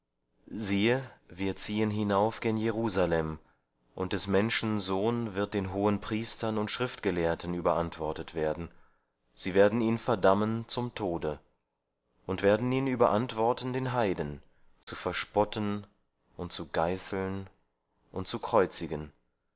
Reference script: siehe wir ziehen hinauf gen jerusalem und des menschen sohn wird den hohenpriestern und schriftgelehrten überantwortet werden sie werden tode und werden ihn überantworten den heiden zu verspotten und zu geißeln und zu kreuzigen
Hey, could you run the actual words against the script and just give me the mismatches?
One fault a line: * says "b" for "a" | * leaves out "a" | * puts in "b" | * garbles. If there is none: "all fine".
* puts in "ihn verdammen zum"